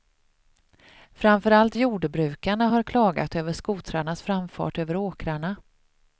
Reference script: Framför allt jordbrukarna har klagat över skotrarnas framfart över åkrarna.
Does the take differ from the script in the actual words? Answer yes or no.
no